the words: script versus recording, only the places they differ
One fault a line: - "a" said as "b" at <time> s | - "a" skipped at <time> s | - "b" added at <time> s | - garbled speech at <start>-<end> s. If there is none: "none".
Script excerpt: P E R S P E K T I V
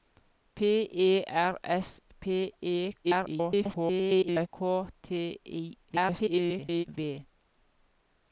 - garbled speech at 3.0-4.5 s
- garbled speech at 5.9-6.8 s